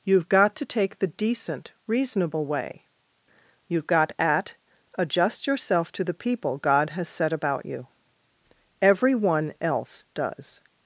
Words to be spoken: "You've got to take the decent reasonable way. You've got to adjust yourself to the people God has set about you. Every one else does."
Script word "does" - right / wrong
right